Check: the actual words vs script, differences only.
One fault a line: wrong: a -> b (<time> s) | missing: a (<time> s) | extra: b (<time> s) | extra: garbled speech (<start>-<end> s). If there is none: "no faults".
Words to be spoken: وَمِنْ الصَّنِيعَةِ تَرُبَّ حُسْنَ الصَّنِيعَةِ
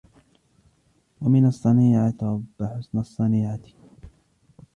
no faults